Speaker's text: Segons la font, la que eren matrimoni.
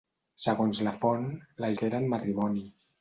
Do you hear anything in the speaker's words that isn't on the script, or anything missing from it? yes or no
no